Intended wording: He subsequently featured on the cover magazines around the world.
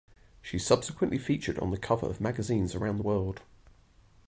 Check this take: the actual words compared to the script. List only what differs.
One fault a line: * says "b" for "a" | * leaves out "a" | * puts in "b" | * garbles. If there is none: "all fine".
* says "She" for "He"
* puts in "of"